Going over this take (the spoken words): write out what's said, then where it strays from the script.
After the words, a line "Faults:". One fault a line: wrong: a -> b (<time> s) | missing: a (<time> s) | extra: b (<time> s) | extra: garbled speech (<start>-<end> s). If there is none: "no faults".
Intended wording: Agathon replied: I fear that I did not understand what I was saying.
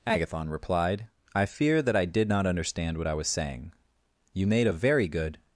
Agathon replied: I fear that I did not understand what I was saying. You made a very good
Faults:
extra: You made a very good (4.3 s)